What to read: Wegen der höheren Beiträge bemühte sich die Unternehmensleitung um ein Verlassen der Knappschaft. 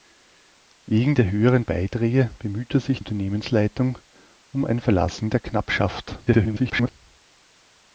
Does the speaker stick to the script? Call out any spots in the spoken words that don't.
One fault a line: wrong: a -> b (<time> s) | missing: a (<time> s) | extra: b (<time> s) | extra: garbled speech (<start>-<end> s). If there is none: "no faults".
missing: die (3.0 s)
extra: garbled speech (6.3-6.9 s)